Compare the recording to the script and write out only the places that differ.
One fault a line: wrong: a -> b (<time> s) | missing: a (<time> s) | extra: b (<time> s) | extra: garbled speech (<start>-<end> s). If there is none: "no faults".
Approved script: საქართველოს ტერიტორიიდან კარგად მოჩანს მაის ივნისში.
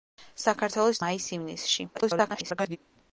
missing: ტერიტორიიდან კარგად მოჩანს (1.0 s)
extra: garbled speech (1.9-2.8 s)